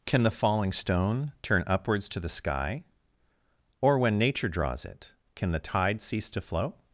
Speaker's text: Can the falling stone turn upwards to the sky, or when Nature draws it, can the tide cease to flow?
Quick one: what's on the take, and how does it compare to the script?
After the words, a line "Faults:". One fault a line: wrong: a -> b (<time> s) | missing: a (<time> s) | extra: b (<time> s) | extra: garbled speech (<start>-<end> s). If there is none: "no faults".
Can the falling stone turn upwards to the sky, or when Nature draws it, can the tide cease to flow?
Faults:
no faults